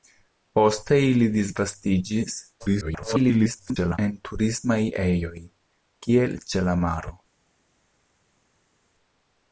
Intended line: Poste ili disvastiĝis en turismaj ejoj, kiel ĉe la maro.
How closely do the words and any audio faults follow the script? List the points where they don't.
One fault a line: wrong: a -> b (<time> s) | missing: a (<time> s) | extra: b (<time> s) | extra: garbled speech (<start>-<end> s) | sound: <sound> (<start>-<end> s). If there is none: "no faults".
extra: garbled speech (2.6-4.0 s)